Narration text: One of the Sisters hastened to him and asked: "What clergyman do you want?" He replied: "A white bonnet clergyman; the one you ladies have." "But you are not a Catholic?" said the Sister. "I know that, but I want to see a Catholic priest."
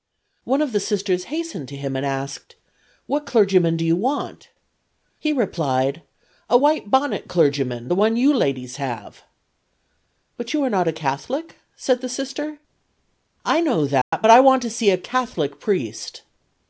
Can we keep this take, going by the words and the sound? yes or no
no